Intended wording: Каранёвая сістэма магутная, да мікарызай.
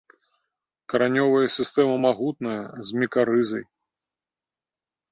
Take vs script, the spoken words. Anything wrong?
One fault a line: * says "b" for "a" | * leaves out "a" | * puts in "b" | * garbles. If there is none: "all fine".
* says "з" for "да"